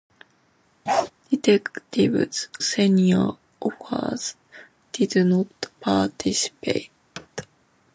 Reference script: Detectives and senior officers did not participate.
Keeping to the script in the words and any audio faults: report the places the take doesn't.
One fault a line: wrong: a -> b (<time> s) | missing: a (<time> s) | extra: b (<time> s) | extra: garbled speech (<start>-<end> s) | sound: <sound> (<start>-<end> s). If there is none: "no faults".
sound: bark (0.9-1.1 s)
missing: and (2.5 s)
sound: thud (7.2-7.3 s)